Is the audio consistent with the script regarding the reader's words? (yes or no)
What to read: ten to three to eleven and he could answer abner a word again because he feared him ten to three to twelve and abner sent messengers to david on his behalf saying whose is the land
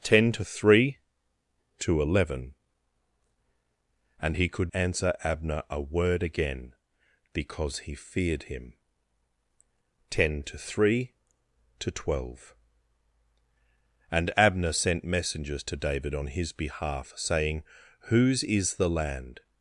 yes